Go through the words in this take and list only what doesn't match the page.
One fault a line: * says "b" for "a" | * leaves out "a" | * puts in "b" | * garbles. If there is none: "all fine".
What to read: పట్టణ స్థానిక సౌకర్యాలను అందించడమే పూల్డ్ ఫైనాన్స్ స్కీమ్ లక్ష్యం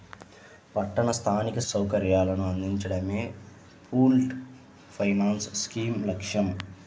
all fine